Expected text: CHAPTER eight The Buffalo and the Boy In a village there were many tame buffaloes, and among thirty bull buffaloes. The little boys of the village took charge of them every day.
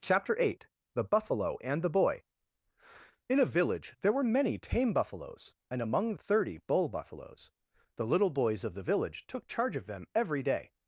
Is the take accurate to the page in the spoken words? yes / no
yes